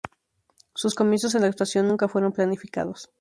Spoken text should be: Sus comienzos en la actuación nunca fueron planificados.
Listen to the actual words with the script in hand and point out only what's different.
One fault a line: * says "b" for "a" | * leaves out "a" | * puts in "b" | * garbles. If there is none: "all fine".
all fine